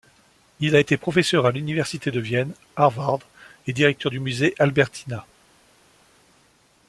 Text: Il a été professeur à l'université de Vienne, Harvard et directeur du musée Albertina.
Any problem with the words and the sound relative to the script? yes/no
no